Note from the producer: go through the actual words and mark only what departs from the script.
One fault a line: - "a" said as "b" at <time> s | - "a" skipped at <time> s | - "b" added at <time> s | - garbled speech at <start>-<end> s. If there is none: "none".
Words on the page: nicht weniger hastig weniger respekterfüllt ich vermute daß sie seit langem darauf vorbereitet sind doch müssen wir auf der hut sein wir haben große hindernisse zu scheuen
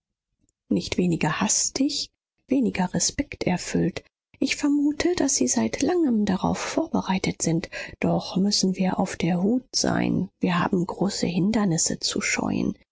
none